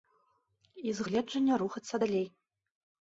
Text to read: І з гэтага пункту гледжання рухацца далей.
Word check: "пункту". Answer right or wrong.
wrong